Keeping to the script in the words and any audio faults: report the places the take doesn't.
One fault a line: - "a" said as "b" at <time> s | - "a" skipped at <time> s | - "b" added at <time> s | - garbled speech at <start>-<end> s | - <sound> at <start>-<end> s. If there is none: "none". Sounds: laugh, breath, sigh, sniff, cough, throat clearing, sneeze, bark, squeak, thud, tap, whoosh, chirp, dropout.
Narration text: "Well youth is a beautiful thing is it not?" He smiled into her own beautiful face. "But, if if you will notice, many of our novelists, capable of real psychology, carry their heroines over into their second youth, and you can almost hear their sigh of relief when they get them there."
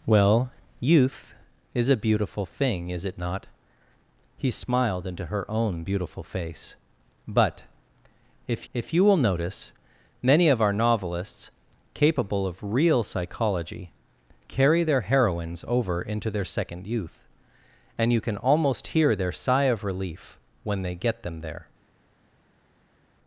none